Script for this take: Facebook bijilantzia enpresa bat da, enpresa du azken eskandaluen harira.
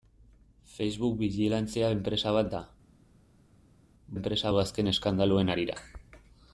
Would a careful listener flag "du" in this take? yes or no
no